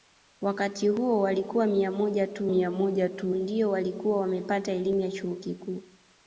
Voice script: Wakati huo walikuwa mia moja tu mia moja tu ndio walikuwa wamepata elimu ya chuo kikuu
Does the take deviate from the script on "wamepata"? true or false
false